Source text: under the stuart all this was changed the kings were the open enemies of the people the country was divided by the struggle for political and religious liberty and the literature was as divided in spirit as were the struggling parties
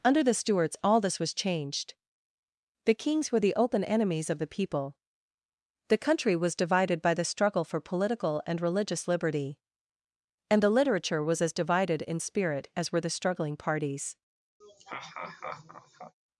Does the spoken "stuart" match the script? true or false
false